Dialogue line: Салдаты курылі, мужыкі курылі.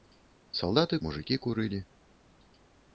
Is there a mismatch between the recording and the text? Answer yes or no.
yes